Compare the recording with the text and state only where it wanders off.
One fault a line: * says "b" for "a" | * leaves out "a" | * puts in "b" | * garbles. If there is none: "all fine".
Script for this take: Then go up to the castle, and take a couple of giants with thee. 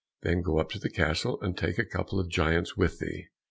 all fine